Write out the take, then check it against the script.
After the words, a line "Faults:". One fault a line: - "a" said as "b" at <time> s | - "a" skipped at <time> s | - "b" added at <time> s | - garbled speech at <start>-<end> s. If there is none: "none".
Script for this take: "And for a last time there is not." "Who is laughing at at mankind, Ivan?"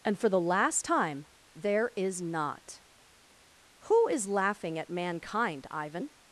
"And for the last time there is not." "Who is laughing at mankind, Ivan?"
Faults:
- "a" said as "the" at 0.3 s
- "at" skipped at 4.9 s